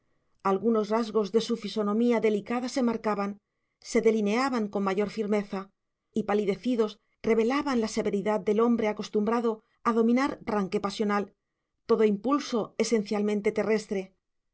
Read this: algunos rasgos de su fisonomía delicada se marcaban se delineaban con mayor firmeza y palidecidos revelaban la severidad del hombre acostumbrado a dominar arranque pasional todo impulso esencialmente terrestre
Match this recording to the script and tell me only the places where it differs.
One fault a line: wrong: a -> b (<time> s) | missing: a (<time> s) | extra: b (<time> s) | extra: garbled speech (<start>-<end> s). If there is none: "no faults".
no faults